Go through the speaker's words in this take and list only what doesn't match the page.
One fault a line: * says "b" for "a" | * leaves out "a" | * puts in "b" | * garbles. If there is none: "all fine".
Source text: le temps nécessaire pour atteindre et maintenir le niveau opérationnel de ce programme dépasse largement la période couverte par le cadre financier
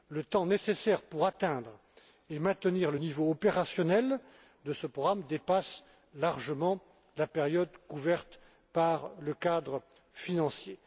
all fine